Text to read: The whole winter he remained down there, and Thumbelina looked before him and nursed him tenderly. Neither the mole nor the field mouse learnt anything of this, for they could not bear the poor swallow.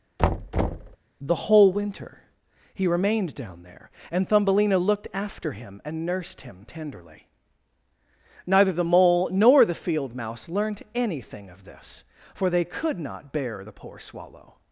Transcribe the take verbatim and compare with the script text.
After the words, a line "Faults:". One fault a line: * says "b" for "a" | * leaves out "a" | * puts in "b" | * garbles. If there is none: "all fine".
The whole winter he remained down there, and Thumbelina looked after him and nursed him tenderly. Neither the mole nor the field mouse learnt anything of this, for they could not bear the poor swallow.
Faults:
* says "after" for "before"